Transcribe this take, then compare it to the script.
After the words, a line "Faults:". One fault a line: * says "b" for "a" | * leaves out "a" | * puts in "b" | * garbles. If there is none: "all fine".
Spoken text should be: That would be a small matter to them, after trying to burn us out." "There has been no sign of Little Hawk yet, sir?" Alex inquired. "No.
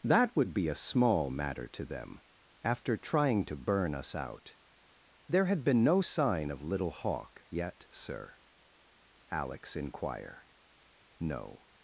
That would be a small matter to them, after trying to burn us out." "There had been no sign of Little Hawk yet, sir?" Alex inquire. "No.
Faults:
* says "had" for "has"
* says "inquire" for "inquired"